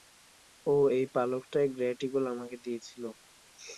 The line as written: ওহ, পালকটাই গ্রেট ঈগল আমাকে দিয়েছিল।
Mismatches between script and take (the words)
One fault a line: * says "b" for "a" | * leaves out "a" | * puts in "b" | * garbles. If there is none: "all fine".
* puts in "এই"